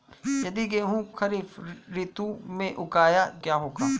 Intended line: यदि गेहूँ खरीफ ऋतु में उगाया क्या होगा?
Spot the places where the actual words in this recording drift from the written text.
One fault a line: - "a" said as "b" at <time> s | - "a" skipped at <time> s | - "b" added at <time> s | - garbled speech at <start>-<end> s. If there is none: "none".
none